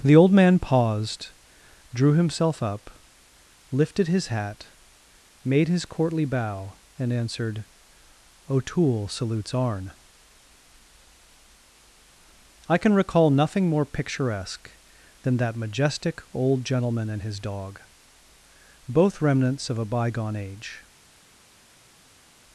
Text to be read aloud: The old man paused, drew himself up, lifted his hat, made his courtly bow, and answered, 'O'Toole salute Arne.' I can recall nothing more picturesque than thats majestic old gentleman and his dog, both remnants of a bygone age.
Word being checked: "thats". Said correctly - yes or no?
no